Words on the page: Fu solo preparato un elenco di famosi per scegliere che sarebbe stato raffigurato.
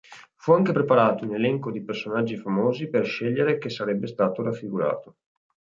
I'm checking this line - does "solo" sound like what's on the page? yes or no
no